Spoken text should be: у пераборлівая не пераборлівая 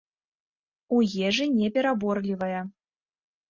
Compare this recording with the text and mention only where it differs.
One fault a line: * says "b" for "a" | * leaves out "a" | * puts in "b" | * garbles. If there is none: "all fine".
* says "ежы" for "пераборлівая"